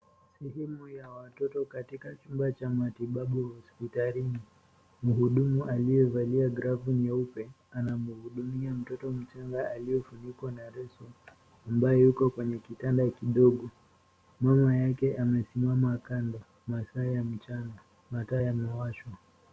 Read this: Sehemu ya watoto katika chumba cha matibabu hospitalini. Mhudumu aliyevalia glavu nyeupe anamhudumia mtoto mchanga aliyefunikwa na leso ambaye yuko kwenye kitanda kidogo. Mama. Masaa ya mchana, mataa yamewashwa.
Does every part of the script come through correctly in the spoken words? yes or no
no